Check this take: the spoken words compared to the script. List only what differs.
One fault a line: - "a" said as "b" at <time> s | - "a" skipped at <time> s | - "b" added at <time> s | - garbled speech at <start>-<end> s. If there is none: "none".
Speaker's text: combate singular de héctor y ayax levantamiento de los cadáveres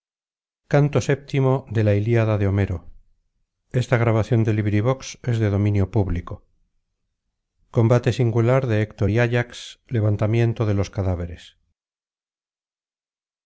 none